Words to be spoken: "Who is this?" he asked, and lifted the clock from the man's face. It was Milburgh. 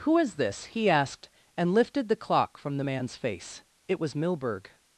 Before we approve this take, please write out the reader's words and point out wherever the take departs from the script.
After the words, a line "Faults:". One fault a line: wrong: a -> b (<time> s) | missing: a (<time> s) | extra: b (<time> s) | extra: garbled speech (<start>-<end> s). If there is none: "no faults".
"Who is this?" he asked, and lifted the clock from the man's face. It was Milburgh.
Faults:
no faults